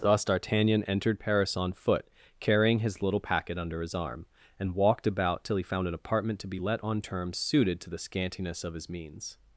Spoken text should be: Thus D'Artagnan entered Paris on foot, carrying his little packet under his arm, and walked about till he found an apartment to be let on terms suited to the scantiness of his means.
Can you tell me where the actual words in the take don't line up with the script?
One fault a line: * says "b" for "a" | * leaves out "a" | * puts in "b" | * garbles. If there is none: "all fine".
all fine